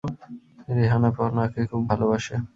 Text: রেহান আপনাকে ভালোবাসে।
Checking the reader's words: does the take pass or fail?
fail